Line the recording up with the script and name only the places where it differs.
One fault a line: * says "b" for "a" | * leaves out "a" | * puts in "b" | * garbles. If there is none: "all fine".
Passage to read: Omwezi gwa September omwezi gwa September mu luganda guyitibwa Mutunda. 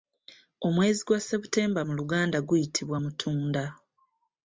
* leaves out "omwezi gwa September"